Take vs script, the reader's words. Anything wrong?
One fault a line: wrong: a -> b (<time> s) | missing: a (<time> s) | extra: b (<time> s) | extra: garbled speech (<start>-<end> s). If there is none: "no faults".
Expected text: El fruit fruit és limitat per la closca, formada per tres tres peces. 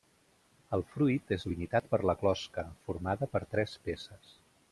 missing: fruit (1.3 s)
missing: tres (3.8 s)